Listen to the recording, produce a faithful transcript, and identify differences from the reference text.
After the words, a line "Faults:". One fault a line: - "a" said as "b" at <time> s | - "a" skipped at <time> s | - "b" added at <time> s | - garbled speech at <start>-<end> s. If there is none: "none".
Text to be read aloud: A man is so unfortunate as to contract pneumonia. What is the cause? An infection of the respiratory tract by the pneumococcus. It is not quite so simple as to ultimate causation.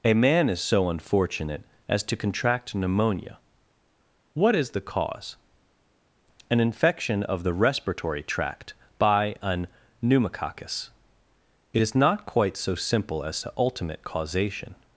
A man is so unfortunate as to contract pneumonia. What is the cause? An infection of the respiratory tract by an pneumococcus. It is not quite so simple as to ultimate causation.
Faults:
- "the" said as "an" at 9.4 s